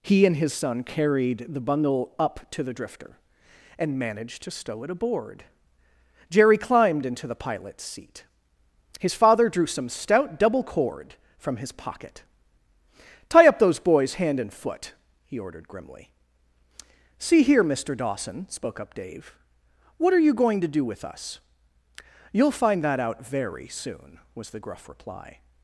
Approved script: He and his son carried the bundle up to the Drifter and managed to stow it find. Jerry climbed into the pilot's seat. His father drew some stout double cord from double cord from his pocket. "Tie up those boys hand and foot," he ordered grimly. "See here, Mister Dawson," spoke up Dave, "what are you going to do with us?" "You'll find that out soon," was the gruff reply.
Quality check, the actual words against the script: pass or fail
fail